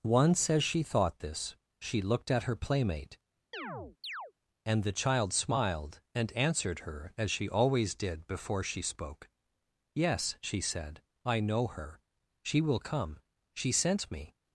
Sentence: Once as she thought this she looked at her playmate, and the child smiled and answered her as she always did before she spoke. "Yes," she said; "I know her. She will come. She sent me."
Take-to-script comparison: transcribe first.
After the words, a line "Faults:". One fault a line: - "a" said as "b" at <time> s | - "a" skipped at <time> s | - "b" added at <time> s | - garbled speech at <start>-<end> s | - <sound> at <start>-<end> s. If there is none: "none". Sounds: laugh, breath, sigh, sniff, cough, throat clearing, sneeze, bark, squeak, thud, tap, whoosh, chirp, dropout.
Once as she thought this she looked at her playmate, and the child smiled and answered her as she always did before she spoke. "Yes," she said; "I know her. She will come. She sent me."
Faults:
- chirp at 3.5-4.3 s